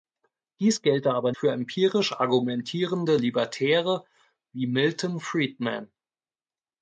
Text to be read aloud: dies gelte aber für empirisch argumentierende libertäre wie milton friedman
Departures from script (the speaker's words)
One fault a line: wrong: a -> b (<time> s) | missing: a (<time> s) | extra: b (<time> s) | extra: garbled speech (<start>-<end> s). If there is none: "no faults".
no faults